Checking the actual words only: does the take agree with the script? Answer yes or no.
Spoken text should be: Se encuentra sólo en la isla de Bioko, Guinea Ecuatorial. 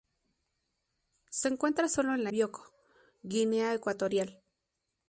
no